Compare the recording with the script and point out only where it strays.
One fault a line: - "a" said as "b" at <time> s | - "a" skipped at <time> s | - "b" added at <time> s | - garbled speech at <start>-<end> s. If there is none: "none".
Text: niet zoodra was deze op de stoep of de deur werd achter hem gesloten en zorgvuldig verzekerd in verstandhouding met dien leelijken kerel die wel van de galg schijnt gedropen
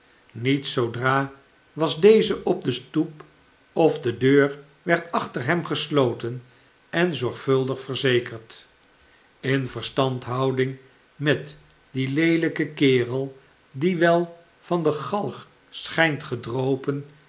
none